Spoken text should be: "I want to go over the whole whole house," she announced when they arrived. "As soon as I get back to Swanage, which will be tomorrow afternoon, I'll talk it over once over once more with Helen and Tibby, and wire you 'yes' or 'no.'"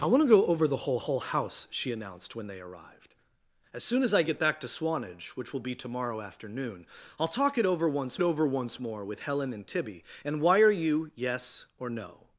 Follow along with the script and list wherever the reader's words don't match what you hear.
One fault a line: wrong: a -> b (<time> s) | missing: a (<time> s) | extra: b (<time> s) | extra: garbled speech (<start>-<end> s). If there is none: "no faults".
no faults